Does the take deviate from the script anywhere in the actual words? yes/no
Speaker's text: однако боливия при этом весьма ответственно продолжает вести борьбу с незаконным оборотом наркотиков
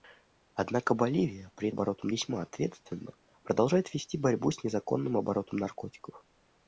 yes